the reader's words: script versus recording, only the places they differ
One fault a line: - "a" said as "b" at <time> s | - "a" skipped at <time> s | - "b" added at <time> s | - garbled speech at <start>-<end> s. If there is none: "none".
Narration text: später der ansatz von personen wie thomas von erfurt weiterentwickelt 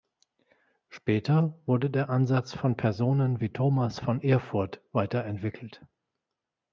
- "wurde" added at 1.7 s